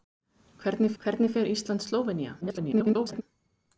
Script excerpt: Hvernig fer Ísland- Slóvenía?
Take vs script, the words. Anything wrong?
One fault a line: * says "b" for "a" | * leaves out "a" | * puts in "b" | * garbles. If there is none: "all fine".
* puts in "hvernig"
* garbles